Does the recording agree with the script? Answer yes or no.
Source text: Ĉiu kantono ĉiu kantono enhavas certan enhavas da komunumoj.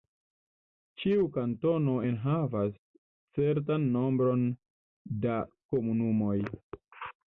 no